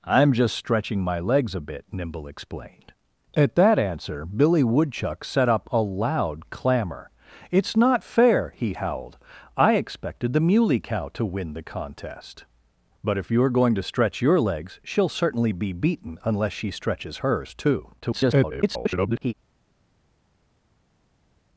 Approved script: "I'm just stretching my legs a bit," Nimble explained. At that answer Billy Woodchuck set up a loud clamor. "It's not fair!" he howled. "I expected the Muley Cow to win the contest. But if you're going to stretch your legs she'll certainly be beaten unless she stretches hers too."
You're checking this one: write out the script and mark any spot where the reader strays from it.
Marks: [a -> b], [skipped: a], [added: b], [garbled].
"I'm just stretching my legs a bit," Nimble explained. At that answer Billy Woodchuck set up a loud clamor. "It's not fair!" he howled. "I expected the Muley Cow to win the contest. But if you're going to stretch your legs she'll certainly be beaten unless she stretches hers too." [garbled]